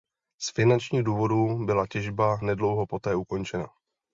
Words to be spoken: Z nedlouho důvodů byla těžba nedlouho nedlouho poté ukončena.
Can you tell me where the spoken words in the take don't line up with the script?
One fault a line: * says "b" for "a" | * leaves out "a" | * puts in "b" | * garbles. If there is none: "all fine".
* says "finančních" for "nedlouho"
* leaves out "nedlouho"